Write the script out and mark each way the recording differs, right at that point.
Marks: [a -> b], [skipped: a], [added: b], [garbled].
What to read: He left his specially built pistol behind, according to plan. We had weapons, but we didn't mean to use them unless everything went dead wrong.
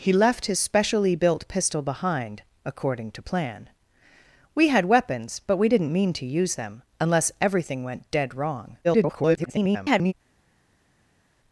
He left his specially built pistol behind, according to plan. We had weapons, but we didn't mean to use them unless everything went dead wrong. [garbled]